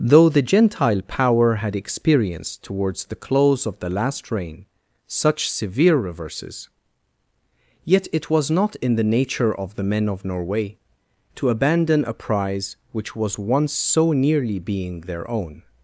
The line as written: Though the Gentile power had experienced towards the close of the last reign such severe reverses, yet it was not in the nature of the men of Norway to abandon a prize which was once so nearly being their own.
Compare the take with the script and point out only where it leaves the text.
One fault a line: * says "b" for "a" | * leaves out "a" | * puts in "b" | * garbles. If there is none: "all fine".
all fine